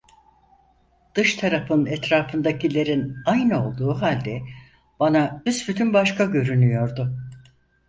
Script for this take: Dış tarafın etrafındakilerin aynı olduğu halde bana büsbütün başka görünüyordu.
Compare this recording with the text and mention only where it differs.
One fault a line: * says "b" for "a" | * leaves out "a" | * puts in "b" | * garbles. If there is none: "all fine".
all fine